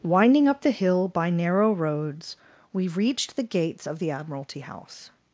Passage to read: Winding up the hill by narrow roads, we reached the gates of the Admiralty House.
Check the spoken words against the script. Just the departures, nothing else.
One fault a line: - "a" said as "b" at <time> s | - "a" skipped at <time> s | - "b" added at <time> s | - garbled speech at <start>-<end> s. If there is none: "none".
none